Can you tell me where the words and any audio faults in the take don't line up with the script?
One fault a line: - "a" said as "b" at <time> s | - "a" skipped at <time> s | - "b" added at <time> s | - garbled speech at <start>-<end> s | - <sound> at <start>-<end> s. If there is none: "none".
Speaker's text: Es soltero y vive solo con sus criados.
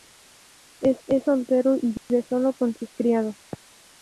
- "es" added at 1.1 s
- dropout at 2.0-2.1 s